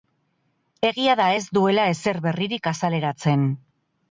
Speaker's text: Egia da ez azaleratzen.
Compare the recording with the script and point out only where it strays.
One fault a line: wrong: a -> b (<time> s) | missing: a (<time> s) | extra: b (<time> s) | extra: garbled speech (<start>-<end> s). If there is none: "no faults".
extra: duela ezer berririk (1.6 s)